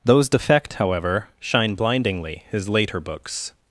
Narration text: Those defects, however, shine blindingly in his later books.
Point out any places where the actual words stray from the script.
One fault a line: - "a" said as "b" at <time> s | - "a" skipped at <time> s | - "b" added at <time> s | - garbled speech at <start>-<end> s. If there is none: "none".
- "defects" said as "defect" at 0.3 s
- "in" skipped at 2.4 s